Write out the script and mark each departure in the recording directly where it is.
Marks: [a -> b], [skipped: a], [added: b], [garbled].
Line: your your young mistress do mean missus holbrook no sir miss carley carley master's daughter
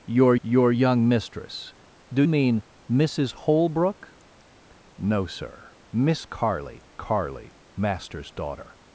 your your young mistress do mean missus holbrook no sir miss carley carley master's daughter